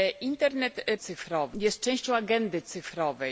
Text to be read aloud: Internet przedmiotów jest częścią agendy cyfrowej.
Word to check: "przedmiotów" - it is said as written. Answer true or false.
false